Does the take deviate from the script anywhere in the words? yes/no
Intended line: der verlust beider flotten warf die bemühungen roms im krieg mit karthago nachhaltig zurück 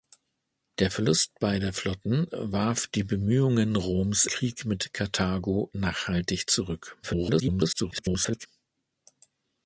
yes